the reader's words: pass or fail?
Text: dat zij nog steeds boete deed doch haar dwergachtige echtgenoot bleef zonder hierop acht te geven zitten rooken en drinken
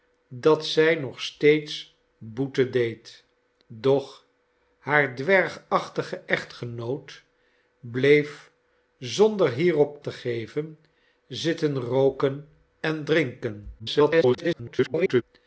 fail